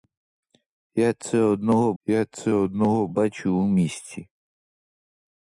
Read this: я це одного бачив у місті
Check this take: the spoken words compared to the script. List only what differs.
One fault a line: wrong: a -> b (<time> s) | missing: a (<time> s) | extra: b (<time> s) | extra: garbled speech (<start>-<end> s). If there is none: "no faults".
extra: я це одного (2.0 s)